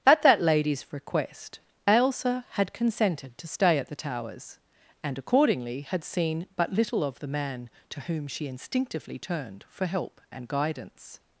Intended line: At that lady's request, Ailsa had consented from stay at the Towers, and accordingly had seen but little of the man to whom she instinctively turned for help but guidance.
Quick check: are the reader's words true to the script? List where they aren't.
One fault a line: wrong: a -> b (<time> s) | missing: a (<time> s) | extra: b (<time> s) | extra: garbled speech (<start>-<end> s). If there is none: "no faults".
wrong: from -> to (3.4 s)
wrong: but -> and (10.3 s)